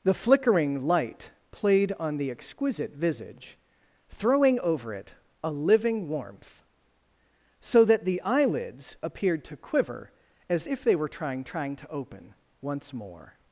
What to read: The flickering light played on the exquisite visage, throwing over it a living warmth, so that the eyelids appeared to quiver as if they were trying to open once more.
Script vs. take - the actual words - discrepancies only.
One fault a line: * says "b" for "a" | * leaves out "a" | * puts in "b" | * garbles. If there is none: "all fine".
* puts in "trying"